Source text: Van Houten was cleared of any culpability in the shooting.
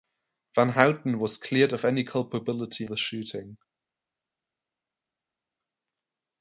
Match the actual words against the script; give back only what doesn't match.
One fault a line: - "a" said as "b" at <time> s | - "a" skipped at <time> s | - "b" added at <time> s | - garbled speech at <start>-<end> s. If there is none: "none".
- "in" skipped at 2.9 s